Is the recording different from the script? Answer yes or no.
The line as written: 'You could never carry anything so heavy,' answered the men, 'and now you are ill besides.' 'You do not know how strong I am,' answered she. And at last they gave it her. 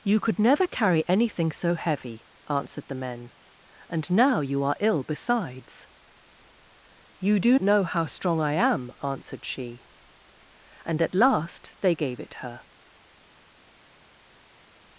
yes